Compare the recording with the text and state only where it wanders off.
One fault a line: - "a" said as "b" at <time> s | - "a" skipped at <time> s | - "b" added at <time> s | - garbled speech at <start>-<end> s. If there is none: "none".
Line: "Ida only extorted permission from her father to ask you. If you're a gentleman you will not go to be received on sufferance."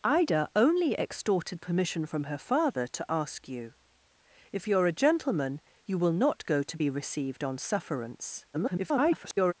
- garbled speech at 8.5-9.5 s